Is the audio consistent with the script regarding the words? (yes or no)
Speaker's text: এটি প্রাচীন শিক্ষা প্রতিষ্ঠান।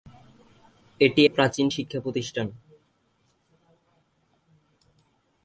yes